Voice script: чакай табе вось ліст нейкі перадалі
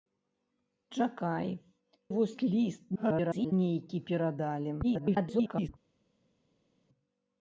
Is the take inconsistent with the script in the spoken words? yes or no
yes